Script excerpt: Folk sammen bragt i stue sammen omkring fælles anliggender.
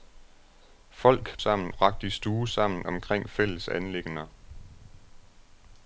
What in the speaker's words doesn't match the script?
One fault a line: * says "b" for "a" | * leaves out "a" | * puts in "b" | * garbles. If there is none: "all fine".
all fine